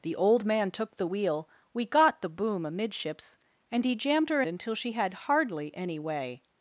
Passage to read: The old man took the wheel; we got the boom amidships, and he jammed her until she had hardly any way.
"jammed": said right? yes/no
yes